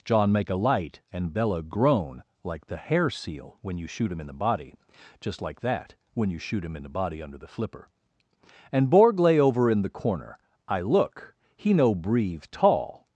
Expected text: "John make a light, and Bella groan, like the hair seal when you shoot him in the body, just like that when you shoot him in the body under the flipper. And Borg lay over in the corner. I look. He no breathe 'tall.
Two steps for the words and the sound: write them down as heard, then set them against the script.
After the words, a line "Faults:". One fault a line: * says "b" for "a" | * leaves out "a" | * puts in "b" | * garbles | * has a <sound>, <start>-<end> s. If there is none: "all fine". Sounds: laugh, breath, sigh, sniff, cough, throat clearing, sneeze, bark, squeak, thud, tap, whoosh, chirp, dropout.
"John make a light, and Bella groan, like the hair seal when you shoot him in the body, just like that when you shoot him in the body under the flipper. And Borg lay over in the corner. I look. He no breathe 'tall.
Faults:
all fine